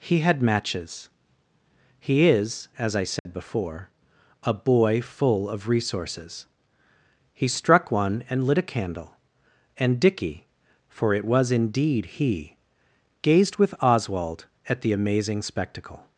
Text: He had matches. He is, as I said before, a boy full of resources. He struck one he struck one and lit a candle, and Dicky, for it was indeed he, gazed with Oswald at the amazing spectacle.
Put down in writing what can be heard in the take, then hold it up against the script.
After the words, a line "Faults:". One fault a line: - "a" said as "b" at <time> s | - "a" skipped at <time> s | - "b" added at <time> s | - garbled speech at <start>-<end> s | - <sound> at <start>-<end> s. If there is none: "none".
He had matches. He is, as I said before, a boy full of resources. He struck one and lit a candle, and Dicky, for it was indeed he, gazed with Oswald at the amazing spectacle.
Faults:
- dropout at 3.2-3.3 s
- "he struck one" skipped at 8.2 s